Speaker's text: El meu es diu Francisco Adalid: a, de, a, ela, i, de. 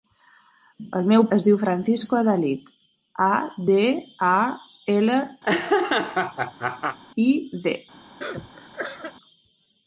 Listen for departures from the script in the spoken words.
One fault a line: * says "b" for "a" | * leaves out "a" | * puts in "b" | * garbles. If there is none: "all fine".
all fine